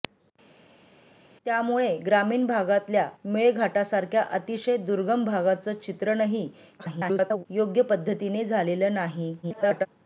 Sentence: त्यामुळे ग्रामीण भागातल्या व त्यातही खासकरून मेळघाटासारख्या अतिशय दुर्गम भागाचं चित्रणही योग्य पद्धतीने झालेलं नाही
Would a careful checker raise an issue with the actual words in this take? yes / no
yes